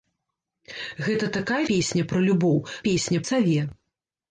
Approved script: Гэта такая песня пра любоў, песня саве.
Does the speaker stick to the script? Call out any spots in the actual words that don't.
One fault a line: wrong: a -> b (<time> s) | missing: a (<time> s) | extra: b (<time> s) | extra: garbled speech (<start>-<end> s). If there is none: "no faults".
no faults